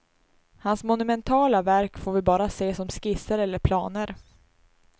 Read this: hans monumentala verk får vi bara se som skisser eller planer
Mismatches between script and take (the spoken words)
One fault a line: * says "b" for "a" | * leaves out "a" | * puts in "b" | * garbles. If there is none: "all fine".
all fine